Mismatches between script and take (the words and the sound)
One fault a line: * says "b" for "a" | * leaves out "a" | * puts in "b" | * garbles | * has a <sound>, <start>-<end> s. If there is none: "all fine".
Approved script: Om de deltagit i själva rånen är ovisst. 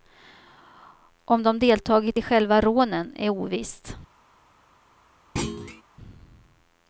* has a thud, 5.4-5.8 s